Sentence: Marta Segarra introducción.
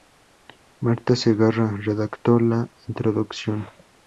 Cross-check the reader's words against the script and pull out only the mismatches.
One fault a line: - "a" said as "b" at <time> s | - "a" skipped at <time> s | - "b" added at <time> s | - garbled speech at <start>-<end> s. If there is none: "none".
- "redactó la" added at 1.9 s